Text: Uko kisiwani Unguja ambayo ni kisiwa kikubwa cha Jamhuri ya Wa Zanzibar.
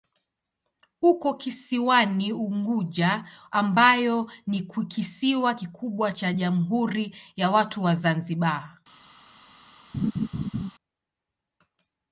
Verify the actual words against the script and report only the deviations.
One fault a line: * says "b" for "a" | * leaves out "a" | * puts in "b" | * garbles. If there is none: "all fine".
* puts in "Watu"